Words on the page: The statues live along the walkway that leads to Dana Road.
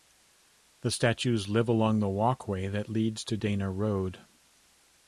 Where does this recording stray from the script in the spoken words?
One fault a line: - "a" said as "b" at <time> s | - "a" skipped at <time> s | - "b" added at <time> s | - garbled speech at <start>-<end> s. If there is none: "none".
none